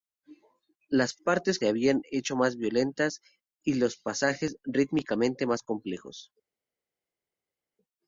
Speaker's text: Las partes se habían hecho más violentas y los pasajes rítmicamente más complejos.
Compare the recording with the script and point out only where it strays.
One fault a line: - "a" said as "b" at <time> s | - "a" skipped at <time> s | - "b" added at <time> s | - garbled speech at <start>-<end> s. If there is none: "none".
none